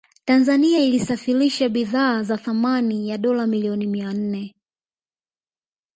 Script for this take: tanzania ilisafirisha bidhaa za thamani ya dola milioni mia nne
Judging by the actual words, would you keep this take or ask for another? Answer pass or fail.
pass